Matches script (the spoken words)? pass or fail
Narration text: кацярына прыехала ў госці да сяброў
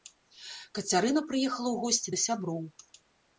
pass